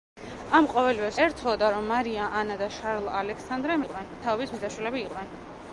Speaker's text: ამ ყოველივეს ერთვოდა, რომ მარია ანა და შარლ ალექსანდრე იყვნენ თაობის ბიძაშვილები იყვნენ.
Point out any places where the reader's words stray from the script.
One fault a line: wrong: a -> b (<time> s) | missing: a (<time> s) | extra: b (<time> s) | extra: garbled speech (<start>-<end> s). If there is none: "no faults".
no faults